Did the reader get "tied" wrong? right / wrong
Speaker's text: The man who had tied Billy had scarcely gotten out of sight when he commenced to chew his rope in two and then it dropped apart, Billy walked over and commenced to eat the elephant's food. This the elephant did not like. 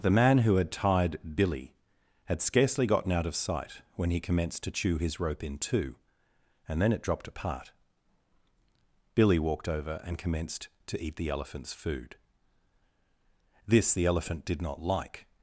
right